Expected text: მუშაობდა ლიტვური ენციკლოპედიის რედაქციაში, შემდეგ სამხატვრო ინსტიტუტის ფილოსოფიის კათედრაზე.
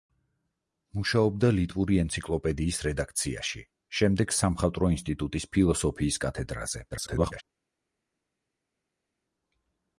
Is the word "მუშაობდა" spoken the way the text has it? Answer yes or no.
yes